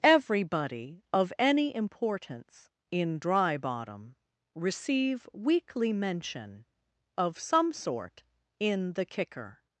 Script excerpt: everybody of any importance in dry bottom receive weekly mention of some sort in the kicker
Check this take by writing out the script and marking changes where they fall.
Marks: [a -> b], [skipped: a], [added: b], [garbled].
everybody of any importance in dry bottom receive weekly mention of some sort in the kicker